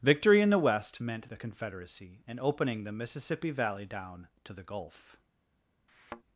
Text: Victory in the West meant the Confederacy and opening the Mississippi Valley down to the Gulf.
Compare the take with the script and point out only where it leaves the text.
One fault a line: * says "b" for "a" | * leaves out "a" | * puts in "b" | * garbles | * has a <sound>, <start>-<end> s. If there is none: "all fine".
* has a thud, 5.9-6.2 s